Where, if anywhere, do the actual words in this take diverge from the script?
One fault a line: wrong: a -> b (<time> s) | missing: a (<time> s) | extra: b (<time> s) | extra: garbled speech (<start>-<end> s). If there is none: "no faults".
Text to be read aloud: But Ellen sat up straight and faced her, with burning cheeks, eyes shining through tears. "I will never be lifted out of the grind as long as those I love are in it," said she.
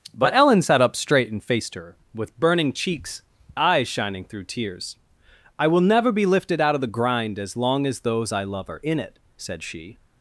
no faults